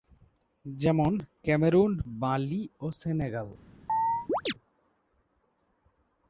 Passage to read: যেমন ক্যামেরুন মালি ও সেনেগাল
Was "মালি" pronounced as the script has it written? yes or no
yes